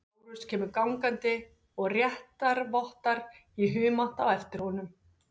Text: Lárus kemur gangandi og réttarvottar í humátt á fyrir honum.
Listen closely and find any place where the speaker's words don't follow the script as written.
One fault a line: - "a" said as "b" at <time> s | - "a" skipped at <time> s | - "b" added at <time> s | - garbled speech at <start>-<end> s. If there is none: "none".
- "fyrir" said as "eftir" at 4.4 s